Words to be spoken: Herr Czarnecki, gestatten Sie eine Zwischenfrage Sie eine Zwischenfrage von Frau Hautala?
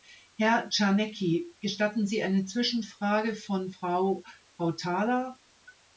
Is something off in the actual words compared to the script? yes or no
yes